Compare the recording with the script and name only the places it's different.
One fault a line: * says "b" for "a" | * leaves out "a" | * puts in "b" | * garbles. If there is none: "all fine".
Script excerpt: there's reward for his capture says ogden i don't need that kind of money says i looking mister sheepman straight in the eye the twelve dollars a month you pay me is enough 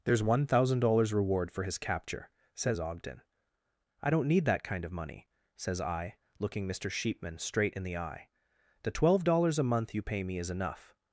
* puts in "one thousand dollars"